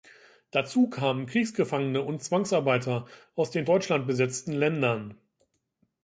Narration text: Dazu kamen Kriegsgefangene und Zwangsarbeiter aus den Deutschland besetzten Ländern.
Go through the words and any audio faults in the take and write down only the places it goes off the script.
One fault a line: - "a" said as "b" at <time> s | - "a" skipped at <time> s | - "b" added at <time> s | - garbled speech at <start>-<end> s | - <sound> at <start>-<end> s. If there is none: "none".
none